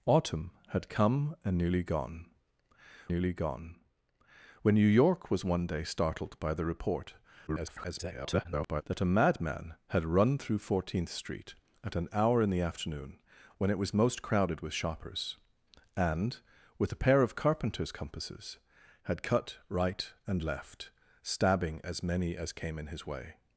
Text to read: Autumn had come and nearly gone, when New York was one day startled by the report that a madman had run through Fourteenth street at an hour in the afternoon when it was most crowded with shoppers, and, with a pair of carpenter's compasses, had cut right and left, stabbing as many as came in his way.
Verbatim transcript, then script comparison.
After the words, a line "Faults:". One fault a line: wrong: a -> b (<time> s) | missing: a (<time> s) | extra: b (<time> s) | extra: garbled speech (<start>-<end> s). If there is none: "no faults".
Autumn had come and nearly gone nearly gone, when New York was one day startled by the report [garbled] that a madman had run through Fourteenth street at an hour in the afternoon when it was most crowded with shoppers, and, with a pair of carpenter's compasses, had cut right and left, stabbing as many as came in his way.
Faults:
extra: nearly gone (3.1 s)
extra: garbled speech (7.5-8.8 s)